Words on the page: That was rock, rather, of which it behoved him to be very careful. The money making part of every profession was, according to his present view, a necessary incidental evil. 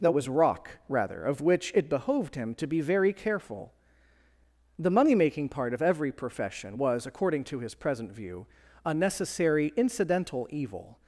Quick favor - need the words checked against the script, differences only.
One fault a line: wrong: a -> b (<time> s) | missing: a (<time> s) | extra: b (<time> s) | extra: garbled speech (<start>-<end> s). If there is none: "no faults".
no faults